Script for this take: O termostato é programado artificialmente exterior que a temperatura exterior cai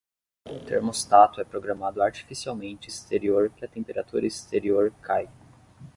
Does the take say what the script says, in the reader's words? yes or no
yes